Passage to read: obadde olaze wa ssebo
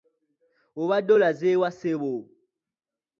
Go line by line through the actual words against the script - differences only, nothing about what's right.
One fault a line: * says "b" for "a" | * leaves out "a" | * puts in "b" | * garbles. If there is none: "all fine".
all fine